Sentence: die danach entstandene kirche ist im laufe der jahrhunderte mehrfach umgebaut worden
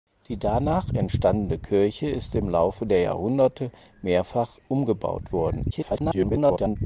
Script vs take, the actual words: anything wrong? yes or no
yes